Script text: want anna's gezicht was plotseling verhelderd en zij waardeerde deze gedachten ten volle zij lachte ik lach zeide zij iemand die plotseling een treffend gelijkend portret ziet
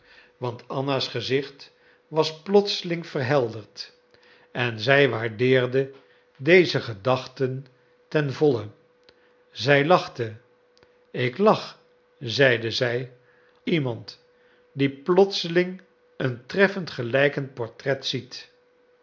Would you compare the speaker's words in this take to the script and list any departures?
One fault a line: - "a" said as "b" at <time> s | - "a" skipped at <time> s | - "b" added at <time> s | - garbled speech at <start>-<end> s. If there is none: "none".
none